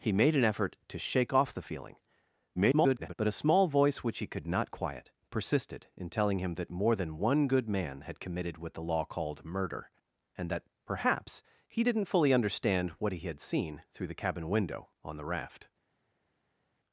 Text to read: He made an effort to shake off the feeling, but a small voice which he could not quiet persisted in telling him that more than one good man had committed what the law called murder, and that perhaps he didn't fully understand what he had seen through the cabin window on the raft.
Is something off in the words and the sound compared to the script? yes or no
yes